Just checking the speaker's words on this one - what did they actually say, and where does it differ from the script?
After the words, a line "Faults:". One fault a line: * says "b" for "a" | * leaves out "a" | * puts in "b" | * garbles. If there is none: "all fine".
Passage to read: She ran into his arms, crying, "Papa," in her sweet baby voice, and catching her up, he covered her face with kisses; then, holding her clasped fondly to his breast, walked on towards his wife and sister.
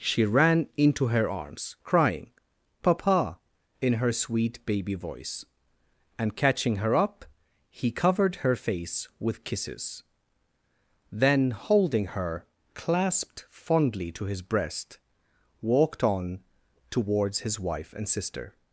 She ran into her arms, crying, "Papa," in her sweet baby voice, and catching her up, he covered her face with kisses; then, holding her clasped fondly to his breast, walked on towards his wife and sister.
Faults:
* says "her" for "his"